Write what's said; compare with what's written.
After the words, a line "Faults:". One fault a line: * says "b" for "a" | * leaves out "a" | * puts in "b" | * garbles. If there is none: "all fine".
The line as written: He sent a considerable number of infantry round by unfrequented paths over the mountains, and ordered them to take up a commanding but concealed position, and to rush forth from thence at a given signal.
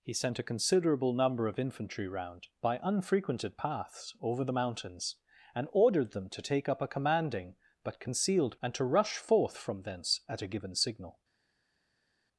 He sent a considerable number of infantry round by unfrequented paths over the mountains, and ordered them to take up a commanding but concealed and to rush forth from thence at a given signal.
Faults:
* leaves out "position"